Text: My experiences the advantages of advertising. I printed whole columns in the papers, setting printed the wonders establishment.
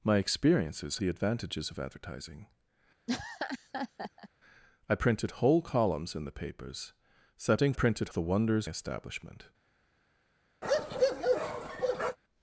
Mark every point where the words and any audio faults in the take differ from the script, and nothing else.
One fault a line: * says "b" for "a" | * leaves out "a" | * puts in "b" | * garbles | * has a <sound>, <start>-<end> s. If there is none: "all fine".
* has a laugh, 3.1-4.3 s
* has a bark, 10.6-12.2 s